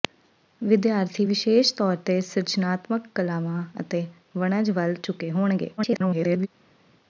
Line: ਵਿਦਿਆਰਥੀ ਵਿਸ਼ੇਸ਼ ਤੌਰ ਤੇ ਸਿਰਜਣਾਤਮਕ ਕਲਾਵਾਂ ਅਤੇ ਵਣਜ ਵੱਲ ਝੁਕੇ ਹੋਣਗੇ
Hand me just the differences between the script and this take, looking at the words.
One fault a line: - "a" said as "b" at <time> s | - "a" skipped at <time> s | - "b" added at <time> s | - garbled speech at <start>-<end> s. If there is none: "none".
- garbled speech at 5.8-6.5 s